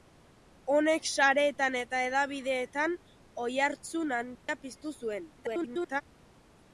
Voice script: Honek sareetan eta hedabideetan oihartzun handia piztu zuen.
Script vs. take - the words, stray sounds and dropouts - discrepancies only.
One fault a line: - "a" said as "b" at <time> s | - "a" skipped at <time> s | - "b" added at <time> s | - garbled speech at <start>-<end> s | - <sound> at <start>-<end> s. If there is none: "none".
- dropout at 4.3-4.5 s
- garbled speech at 5.4-6.0 s